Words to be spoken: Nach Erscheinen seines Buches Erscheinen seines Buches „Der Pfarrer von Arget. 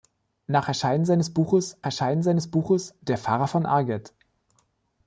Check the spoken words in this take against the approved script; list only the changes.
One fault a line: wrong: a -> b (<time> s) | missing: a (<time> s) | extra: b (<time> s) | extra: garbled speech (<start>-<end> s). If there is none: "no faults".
no faults